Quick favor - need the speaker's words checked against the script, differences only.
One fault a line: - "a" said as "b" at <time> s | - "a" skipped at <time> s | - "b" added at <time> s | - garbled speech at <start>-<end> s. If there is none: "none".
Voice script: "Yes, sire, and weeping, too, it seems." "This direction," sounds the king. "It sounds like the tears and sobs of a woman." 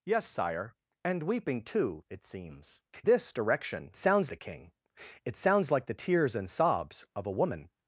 none